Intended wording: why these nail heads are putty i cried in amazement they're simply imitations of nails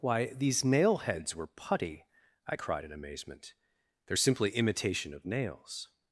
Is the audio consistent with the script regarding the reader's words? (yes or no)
no